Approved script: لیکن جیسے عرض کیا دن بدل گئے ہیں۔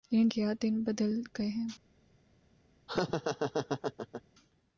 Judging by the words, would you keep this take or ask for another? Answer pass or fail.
fail